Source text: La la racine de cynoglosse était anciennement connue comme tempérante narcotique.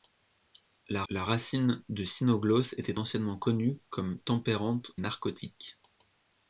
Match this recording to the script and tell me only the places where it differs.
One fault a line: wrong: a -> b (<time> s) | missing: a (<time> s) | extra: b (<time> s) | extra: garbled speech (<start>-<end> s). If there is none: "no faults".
no faults